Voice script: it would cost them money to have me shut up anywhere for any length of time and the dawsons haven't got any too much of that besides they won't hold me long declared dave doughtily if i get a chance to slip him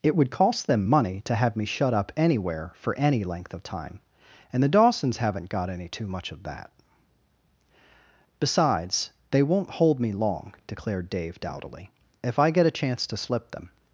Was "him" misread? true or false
true